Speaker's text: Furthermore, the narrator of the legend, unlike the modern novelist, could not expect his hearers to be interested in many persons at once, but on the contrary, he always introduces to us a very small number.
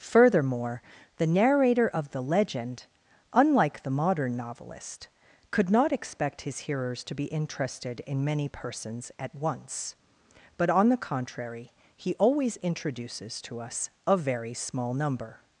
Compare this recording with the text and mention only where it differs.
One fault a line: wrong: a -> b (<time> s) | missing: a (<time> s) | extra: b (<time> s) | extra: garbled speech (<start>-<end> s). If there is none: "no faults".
no faults